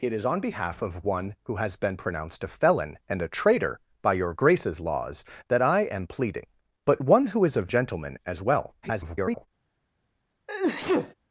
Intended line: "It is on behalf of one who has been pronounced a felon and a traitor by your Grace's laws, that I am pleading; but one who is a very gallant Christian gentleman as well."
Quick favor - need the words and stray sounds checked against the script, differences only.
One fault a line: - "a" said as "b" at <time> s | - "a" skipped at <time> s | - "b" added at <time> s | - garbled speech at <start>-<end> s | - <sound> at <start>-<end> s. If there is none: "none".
- "very gallant Christian" skipped at 7.7 s
- garbled speech at 8.8-9.5 s
- sneeze at 10.5-11.1 s